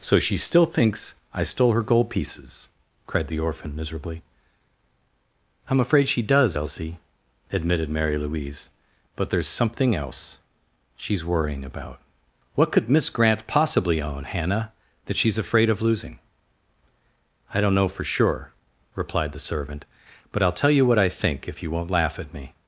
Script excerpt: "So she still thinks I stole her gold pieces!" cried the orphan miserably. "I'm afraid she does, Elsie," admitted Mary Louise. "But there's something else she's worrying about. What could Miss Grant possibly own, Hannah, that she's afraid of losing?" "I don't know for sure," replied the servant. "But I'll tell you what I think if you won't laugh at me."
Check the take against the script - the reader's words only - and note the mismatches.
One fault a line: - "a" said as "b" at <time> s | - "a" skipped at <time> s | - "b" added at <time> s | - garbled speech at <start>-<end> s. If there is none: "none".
none